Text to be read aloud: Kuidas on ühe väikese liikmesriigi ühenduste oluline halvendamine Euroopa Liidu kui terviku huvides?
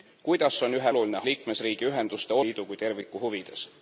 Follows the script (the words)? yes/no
no